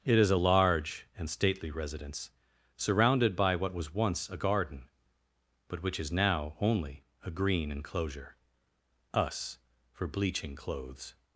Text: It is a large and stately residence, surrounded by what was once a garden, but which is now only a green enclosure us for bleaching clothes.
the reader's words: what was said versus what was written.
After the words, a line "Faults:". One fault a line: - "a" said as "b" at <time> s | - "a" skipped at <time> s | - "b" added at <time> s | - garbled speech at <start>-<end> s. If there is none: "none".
It is a large and stately residence, surrounded by what was once a garden, but which is now only a green enclosure us for bleaching clothes.
Faults:
none